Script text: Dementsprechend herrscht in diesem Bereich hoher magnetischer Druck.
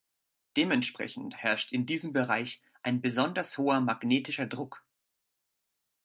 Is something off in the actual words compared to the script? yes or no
yes